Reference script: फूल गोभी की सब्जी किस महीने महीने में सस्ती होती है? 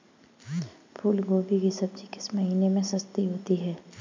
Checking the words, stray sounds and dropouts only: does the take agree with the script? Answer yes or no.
no